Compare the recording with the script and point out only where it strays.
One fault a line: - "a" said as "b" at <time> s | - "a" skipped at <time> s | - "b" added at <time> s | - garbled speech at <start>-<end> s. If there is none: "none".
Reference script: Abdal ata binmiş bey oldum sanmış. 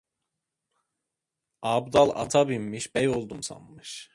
none